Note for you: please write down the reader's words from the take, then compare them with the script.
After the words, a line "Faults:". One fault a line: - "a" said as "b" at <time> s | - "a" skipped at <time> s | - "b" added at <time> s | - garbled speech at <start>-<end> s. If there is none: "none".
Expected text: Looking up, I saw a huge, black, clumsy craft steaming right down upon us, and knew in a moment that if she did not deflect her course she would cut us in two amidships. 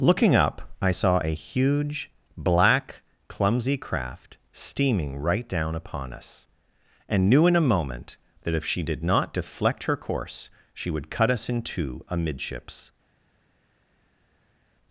Looking up, I saw a huge, black, clumsy craft steaming right down upon us, and knew in a moment that if she did not deflect her course she would cut us in two amidships.
Faults:
none